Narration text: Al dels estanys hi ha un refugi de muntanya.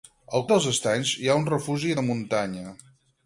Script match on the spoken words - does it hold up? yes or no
yes